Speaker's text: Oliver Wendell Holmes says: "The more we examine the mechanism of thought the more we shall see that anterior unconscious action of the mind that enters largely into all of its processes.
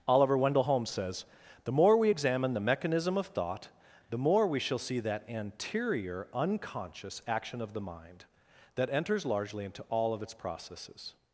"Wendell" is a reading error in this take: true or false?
false